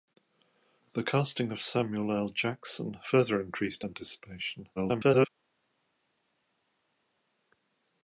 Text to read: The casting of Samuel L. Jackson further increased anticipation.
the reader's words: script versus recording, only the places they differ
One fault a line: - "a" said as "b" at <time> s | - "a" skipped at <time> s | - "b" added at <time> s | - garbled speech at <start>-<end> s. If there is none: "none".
- garbled speech at 4.8-5.3 s